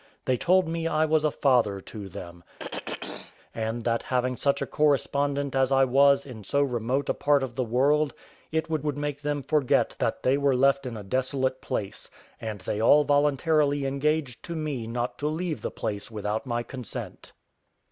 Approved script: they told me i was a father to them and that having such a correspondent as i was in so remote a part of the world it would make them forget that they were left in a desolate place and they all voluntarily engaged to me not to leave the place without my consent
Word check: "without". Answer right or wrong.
right